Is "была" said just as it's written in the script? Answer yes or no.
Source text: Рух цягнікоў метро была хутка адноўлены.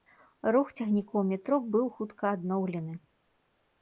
no